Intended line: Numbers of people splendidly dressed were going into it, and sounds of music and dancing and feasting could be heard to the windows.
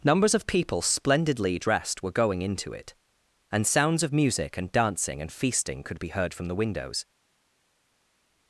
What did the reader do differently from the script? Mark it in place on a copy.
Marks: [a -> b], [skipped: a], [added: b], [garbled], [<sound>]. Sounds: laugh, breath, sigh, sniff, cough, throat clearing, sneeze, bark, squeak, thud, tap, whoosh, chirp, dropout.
Numbers of people splendidly dressed were going into it, and sounds of music and dancing and feasting could be heard [to -> from] the windows.